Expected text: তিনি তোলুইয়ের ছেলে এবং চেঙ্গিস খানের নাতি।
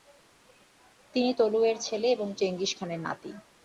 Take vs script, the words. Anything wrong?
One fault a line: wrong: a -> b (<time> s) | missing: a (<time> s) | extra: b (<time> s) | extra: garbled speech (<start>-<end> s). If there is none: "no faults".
no faults